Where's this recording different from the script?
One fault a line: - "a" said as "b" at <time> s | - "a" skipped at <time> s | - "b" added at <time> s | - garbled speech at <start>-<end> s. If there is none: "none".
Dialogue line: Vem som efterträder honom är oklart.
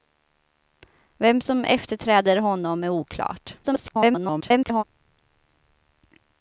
- garbled speech at 3.6-4.8 s